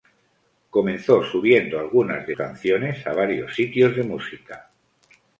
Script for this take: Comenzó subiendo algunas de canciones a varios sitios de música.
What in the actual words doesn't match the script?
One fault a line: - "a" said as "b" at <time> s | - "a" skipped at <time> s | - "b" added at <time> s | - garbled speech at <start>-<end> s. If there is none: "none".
none